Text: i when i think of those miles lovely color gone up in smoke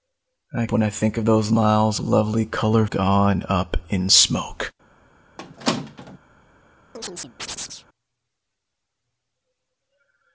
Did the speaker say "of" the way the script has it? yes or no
yes